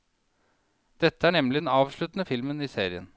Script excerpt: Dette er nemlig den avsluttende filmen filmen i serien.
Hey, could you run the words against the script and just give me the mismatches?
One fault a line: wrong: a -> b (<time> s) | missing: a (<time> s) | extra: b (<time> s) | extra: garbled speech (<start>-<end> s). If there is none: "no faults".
missing: filmen (2.6 s)